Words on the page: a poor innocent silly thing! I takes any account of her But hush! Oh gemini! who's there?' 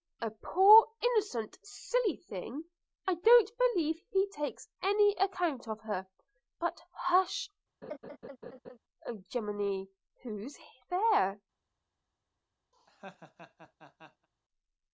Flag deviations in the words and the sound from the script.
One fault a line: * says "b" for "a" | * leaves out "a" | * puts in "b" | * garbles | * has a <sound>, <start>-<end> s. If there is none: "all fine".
* puts in "don't believe he"
* has a laugh, 7.8-8.8 s
* has a laugh, 12.7-14.3 s